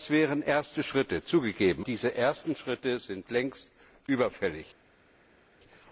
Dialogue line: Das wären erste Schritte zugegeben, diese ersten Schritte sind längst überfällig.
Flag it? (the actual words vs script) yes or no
no